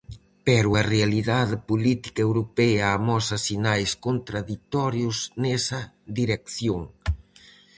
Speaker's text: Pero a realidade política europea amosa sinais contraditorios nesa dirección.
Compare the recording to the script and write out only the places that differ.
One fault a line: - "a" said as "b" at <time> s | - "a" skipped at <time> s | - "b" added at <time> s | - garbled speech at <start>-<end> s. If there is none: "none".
none